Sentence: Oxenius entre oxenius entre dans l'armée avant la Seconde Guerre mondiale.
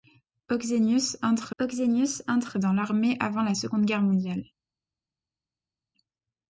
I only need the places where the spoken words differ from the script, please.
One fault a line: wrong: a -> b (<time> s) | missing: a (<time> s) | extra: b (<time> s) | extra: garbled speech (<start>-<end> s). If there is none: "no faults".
no faults